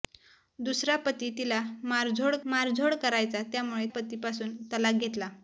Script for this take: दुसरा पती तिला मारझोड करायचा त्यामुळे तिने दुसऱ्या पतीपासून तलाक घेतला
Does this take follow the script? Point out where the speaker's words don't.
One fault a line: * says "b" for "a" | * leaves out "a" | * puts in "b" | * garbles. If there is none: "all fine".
* puts in "मारझोड"
* leaves out "तिने दुसऱ्या"